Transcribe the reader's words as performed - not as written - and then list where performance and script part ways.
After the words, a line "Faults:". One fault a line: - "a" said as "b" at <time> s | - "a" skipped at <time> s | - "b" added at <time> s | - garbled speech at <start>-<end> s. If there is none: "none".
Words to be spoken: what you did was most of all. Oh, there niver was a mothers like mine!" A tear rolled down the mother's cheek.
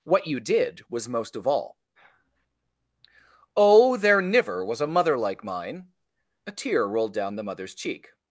what you did was most of all. Oh, there niver was a mother like mine!" A tear rolled down the mother's cheek.
Faults:
- "mothers" said as "mother" at 4.9 s